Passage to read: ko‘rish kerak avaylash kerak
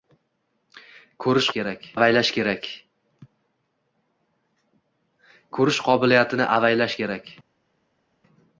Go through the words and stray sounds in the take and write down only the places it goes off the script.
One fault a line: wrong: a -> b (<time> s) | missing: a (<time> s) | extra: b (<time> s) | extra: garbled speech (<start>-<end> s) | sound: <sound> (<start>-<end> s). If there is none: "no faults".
no faults